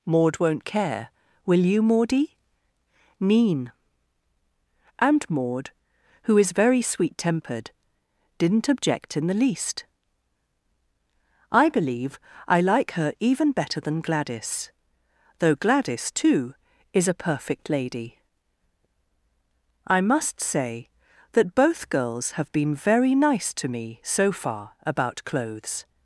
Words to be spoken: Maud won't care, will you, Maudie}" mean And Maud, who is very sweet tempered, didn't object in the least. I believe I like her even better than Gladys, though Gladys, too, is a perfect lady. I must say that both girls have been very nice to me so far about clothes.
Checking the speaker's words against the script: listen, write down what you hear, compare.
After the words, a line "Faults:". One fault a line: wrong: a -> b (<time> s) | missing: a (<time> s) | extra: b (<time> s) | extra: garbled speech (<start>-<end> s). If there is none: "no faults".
Maud won't care, will you, Maudie}" mean And Maud, who is very sweet tempered, didn't object in the least. I believe I like her even better than Gladys, though Gladys, too, is a perfect lady. I must say that both girls have been very nice to me so far about clothes.
Faults:
no faults